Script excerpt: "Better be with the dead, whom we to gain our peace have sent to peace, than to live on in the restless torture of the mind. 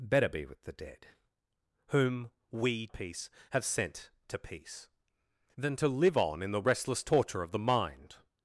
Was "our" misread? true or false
true